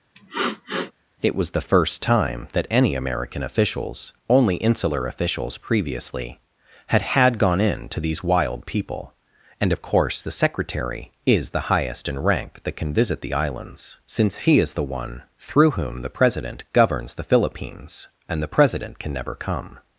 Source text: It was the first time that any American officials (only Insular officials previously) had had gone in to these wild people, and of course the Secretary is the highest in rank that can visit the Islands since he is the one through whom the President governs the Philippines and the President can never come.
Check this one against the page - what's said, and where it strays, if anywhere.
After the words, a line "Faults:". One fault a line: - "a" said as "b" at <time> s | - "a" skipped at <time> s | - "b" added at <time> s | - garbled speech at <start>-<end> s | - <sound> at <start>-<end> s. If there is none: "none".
It was the first time that any American officials (only Insular officials previously) had had gone in to these wild people, and of course the Secretary is the highest in rank that can visit the Islands since he is the one through whom the President governs the Philippines and the President can never come.
Faults:
- sniff at 0.1-0.9 s